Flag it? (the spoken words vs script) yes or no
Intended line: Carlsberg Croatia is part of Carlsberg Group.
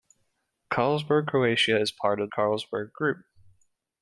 no